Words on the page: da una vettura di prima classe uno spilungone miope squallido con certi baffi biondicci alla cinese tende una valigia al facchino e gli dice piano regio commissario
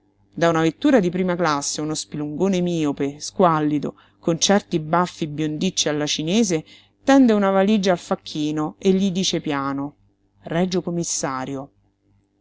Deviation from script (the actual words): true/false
false